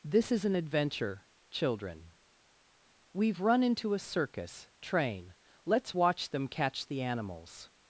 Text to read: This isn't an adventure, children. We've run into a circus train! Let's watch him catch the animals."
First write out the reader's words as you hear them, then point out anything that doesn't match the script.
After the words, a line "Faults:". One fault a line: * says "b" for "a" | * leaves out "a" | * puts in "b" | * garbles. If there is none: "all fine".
This is an adventure, children. We've run into a circus train! Let's watch them catch the animals."
Faults:
* says "is" for "isn't"
* says "them" for "him"